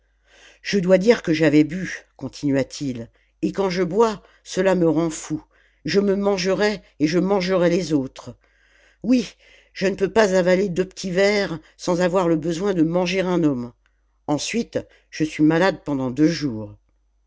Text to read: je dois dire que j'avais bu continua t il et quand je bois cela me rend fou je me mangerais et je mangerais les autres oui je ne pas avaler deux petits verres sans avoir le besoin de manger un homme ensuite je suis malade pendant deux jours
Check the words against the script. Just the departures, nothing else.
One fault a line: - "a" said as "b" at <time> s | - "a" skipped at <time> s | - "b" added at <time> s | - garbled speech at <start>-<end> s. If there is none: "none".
- "peux" added at 9.9 s